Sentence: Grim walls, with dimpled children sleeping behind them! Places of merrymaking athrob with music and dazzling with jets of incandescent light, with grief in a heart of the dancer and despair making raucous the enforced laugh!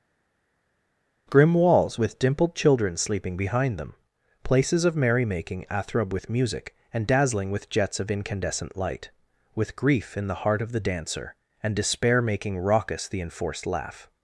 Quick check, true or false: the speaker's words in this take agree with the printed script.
false